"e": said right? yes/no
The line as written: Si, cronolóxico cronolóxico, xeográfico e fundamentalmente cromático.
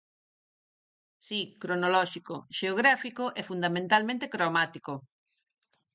yes